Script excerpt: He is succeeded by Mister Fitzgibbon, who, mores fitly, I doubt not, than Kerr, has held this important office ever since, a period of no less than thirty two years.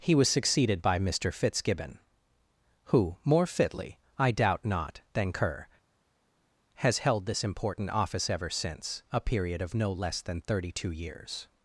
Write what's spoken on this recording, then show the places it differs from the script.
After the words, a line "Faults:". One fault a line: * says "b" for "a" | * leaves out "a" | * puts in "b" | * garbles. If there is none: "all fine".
He was succeeded by Mister Fitzgibbon, who, more fitly, I doubt not, than Kerr, has held this important office ever since, a period of no less than thirty two years.
Faults:
* says "was" for "is"
* says "more" for "mores"